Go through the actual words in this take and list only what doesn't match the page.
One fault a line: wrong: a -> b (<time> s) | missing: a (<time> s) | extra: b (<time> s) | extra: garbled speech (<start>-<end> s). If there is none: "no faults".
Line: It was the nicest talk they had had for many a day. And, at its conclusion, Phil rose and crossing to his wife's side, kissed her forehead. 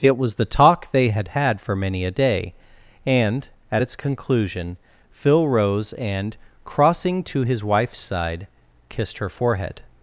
missing: nicest (0.5 s)